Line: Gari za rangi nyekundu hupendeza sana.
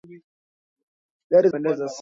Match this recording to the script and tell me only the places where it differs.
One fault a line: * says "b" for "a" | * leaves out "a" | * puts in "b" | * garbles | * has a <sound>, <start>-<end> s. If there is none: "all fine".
* leaves out "za rangi nyekundu"